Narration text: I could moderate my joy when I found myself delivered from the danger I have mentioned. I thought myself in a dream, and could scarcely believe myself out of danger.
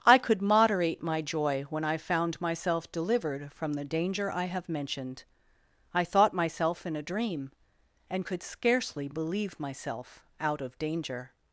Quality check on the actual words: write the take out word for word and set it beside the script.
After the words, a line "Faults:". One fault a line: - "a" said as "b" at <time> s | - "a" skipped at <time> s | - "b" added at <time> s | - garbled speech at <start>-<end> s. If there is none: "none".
I could moderate my joy when I found myself delivered from the danger I have mentioned. I thought myself in a dream, and could scarcely believe myself out of danger.
Faults:
none